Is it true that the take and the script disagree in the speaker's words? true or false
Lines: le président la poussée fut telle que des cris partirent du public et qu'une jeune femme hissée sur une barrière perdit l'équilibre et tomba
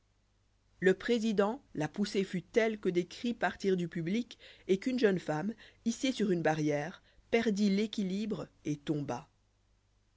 false